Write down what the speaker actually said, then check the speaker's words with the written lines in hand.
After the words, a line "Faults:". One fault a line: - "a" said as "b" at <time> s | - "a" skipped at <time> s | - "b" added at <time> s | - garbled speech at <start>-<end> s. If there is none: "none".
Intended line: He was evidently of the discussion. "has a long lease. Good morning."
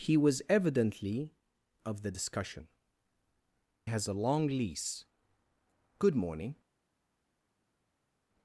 He was evidently of the discussion. "has a long lease. Good morning."
Faults:
none